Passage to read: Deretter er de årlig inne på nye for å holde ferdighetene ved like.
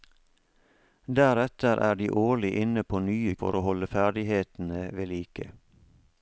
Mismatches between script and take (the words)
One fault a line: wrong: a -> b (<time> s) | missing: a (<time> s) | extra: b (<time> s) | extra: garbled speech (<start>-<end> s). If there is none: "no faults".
no faults